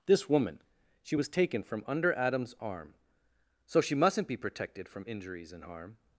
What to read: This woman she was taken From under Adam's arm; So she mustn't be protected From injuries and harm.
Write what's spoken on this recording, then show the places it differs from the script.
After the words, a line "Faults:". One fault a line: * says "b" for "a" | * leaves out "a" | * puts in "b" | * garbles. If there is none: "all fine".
This woman she was taken From under Adam's arm; So she mustn't be protected From injuries and harm.
Faults:
all fine